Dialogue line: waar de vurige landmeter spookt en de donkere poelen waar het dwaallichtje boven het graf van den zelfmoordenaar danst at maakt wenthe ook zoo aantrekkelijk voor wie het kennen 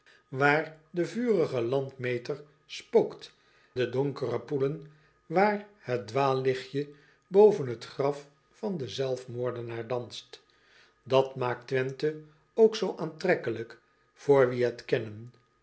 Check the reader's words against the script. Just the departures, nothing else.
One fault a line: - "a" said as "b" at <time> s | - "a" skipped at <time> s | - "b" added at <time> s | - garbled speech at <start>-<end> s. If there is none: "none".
- "en" skipped at 3.4 s